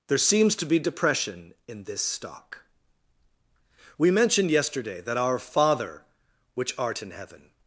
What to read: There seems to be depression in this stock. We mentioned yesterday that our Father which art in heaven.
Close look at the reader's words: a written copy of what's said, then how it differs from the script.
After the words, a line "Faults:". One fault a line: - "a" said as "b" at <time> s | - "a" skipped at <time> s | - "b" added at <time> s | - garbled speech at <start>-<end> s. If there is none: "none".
There seems to be depression in this stock. We mentioned yesterday that our Father which art in heaven.
Faults:
none